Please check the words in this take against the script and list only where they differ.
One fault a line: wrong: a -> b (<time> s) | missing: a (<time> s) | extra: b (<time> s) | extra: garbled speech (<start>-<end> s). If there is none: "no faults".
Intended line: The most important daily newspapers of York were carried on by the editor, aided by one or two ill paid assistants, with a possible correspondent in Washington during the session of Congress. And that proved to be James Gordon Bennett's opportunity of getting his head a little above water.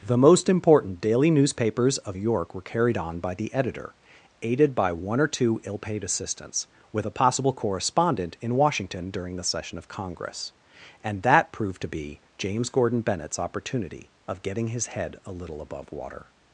no faults